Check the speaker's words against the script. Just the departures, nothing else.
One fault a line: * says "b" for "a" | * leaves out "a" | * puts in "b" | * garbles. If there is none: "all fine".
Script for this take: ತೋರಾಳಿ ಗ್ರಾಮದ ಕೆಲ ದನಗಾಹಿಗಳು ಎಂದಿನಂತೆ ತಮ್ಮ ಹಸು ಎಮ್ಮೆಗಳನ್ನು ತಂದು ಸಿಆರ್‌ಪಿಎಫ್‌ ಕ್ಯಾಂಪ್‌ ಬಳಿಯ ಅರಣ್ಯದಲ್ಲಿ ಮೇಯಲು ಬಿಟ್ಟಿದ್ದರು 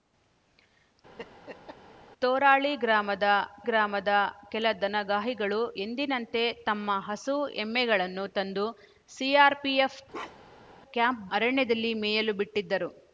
* puts in "ಗ್ರಾಮದ"
* leaves out "ಬಳಿಯ"